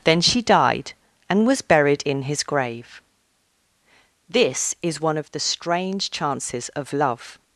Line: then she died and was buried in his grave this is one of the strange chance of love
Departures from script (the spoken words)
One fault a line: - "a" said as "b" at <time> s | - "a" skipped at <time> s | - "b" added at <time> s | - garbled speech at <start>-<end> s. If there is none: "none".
- "chance" said as "chances" at 6.1 s